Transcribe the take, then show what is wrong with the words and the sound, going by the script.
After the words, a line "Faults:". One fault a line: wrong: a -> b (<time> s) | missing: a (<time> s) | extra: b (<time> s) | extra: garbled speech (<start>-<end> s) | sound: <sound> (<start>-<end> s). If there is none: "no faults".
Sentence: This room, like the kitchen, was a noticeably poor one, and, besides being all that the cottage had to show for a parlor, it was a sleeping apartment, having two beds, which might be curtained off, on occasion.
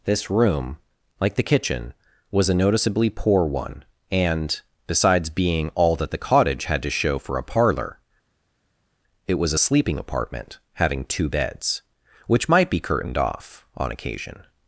This room, like the kitchen, was a noticeably poor one, and, besides being all that the cottage had to show for a parlor, it was a sleeping apartment, having two beds, which might be curtained off, on occasion.
Faults:
no faults